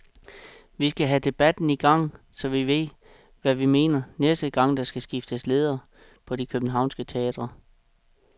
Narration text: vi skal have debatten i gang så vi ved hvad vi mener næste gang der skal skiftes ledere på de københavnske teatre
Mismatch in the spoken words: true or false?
false